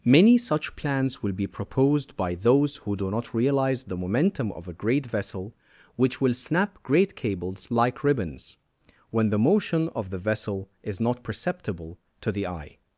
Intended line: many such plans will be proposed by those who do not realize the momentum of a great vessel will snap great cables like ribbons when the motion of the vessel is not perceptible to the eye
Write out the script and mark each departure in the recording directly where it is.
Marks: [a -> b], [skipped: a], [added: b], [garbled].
many such plans will be proposed by those who do not realize the momentum of a great vessel [added: which] will snap great cables like ribbons when the motion of the vessel is not perceptible to the eye